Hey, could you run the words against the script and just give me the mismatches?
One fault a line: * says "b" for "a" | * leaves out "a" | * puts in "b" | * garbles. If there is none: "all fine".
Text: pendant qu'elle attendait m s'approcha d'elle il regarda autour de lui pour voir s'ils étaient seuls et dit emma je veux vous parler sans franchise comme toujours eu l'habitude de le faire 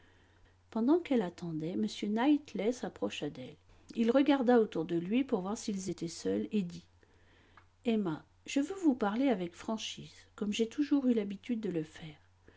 * puts in "knightley"
* says "avec" for "sans"
* puts in "j'ai"